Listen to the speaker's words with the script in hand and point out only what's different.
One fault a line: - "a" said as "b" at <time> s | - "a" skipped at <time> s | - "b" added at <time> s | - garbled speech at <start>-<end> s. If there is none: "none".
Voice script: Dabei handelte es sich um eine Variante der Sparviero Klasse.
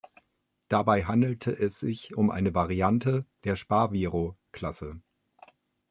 none